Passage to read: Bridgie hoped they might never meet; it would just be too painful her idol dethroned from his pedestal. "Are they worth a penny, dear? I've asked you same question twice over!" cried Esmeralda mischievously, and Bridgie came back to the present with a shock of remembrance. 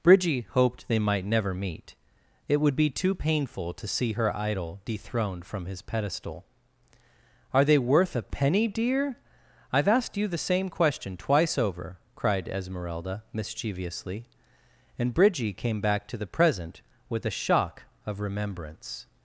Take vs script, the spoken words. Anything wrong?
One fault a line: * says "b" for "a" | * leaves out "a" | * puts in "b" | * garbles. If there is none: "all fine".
* leaves out "just"
* puts in "to see"
* puts in "the"